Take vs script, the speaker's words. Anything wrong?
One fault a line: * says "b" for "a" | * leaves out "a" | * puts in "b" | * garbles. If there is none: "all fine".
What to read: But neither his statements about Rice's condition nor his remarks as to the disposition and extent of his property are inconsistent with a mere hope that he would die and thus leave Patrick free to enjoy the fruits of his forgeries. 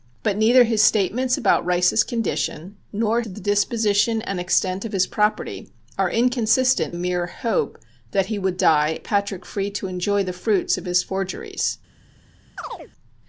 * leaves out "his remarks as"
* leaves out "with"
* leaves out "and thus leave"